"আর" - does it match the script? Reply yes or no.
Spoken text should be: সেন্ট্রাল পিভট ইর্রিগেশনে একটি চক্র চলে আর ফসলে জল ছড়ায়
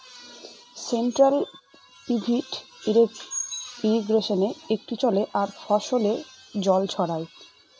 yes